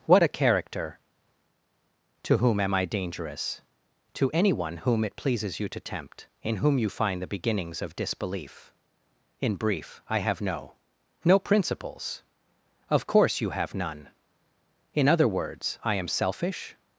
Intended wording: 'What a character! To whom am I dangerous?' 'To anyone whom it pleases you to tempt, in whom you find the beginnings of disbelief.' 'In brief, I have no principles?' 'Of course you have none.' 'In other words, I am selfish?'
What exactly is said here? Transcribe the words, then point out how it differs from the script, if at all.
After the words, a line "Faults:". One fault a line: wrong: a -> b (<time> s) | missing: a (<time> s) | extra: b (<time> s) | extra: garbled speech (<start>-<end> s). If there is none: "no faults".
'What a character! To whom am I dangerous?' 'To anyone whom it pleases you to tempt, in whom you find the beginnings of disbelief.' 'In brief, I have no no principles?' 'Of course you have none.' 'In other words, I am selfish?'
Faults:
extra: no (11.3 s)